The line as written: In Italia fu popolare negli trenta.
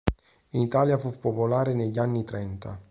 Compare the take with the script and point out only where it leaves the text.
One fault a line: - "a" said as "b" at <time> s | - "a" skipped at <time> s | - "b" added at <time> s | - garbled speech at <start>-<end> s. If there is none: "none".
- "anni" added at 2.0 s